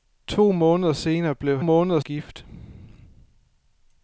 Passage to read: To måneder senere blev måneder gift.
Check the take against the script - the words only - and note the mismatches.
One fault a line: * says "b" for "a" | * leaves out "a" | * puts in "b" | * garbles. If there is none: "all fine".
all fine